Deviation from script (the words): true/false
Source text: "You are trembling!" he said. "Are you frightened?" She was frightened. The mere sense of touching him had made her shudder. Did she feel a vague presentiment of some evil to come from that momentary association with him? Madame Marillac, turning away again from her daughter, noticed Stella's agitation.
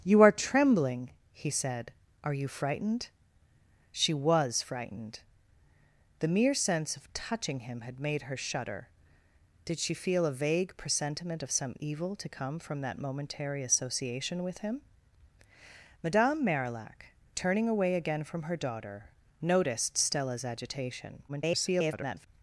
true